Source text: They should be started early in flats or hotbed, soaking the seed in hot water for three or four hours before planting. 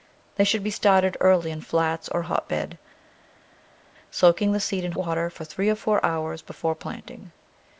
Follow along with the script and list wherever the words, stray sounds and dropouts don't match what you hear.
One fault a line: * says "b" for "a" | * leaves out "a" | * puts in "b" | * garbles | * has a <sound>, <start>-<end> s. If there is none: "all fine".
* leaves out "hot"